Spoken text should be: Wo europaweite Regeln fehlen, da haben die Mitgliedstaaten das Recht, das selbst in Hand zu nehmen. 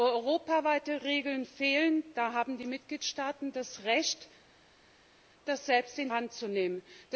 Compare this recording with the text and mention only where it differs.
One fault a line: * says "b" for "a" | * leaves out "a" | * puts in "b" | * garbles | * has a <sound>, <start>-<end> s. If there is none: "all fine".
all fine